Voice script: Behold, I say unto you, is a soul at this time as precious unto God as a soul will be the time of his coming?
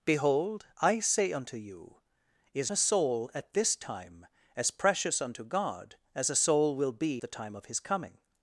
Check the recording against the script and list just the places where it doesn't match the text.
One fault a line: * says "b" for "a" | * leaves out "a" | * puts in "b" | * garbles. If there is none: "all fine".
all fine